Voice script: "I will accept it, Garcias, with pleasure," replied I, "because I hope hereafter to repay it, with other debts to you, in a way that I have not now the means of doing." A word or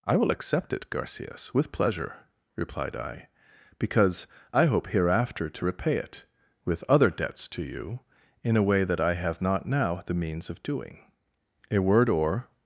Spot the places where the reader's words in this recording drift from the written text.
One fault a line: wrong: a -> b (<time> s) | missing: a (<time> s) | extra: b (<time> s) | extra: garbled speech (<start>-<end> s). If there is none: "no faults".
no faults